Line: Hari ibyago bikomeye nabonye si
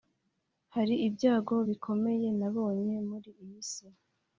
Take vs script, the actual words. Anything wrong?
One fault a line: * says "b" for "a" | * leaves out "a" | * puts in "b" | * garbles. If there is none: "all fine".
* puts in "muri iyi"